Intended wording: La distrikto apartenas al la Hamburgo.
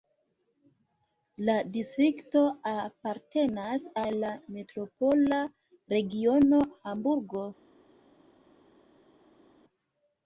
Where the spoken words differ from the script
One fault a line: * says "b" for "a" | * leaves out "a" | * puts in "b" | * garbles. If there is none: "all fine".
* puts in "metropola regiono"